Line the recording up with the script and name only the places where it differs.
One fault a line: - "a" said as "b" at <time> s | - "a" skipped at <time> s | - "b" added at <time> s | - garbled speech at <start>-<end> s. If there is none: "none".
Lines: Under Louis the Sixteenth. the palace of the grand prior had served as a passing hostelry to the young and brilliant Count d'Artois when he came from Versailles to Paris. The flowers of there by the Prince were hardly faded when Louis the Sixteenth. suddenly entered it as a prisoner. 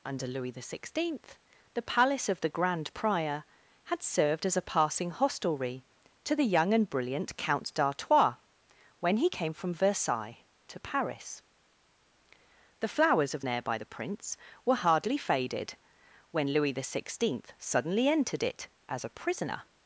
none